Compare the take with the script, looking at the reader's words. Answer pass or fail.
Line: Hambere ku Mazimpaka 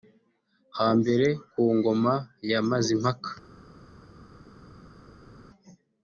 fail